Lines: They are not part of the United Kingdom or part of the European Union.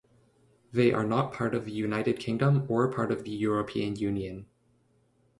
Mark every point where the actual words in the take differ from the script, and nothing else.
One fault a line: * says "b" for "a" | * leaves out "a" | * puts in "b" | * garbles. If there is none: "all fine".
all fine